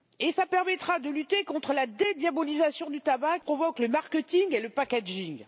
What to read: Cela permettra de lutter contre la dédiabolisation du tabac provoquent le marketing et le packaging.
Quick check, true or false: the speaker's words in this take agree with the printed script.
true